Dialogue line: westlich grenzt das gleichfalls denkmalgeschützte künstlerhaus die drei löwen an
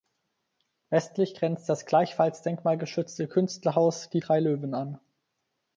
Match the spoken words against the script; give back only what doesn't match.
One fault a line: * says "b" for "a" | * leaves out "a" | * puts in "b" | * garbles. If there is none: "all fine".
all fine